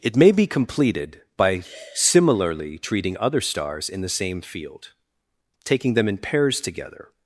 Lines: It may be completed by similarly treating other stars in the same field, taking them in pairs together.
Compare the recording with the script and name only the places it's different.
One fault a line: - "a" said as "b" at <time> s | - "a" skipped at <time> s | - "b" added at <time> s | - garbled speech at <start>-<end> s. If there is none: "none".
none